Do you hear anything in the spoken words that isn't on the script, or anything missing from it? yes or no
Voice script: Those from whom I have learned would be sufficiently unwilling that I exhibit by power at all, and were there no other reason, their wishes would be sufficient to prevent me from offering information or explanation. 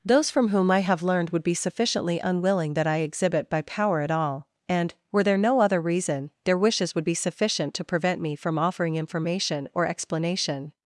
no